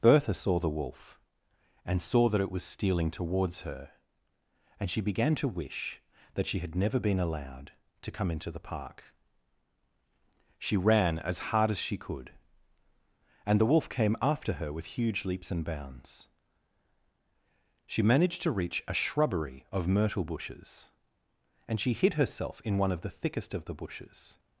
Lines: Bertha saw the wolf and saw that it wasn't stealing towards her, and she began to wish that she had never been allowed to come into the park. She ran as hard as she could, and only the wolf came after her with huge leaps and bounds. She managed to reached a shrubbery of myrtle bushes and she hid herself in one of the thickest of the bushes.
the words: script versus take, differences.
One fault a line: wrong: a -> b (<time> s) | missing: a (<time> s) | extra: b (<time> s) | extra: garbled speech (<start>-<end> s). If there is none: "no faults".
wrong: wasn't -> was (2.5 s)
missing: only (13.6 s)
wrong: reached -> reach (18.5 s)